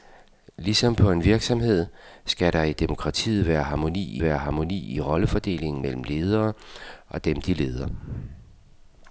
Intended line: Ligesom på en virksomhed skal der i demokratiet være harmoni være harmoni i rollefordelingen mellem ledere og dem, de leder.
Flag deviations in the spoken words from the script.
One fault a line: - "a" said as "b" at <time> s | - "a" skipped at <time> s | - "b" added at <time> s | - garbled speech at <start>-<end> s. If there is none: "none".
none